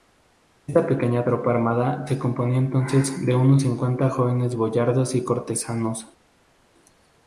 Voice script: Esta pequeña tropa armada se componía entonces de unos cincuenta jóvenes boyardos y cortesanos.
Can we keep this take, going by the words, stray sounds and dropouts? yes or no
yes